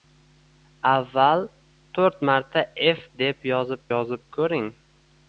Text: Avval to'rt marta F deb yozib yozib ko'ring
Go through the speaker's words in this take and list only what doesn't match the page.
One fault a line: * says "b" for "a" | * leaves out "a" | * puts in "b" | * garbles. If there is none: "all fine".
all fine